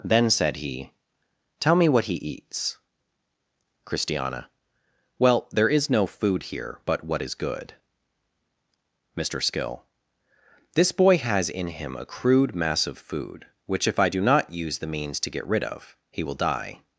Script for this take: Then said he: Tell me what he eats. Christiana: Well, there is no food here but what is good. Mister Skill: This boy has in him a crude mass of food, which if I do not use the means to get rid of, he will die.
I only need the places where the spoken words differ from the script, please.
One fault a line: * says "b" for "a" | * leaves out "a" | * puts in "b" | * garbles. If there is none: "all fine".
all fine